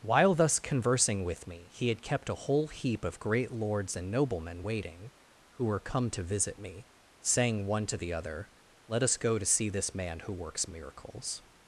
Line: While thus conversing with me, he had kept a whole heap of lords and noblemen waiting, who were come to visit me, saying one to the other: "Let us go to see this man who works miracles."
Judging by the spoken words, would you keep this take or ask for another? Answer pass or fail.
fail